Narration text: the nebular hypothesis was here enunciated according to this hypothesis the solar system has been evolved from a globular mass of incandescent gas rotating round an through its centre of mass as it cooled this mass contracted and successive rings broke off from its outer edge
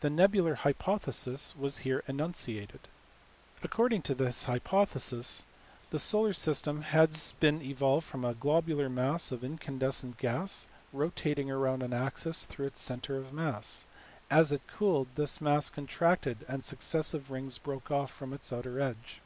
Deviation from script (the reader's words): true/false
true